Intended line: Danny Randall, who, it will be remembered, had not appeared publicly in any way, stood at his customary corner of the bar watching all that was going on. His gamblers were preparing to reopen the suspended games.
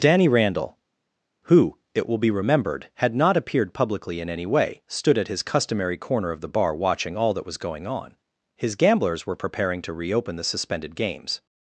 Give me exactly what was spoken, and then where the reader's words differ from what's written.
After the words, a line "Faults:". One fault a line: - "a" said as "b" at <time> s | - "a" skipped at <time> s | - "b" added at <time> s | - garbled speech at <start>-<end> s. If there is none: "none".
Danny Randall, who, it will be remembered, had not appeared publicly in any way, stood at his customary corner of the bar watching all that was going on. His gamblers were preparing to reopen the suspended games.
Faults:
none